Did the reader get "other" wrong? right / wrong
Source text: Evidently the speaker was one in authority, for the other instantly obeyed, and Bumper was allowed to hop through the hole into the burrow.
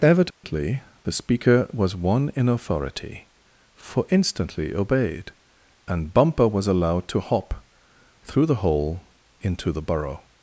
wrong